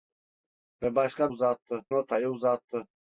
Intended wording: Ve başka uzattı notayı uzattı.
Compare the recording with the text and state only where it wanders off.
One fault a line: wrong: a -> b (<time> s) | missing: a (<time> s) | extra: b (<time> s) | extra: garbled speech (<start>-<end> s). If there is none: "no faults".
no faults